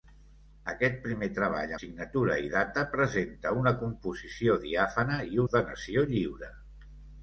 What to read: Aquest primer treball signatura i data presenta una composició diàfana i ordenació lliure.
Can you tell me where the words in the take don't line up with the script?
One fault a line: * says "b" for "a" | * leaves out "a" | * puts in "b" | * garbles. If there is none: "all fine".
all fine